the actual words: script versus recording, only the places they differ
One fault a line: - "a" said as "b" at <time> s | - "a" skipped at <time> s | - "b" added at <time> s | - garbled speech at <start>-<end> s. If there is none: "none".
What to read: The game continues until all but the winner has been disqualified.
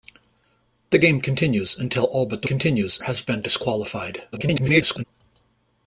- "winner" said as "continues" at 2.4 s
- garbled speech at 4.3-5.0 s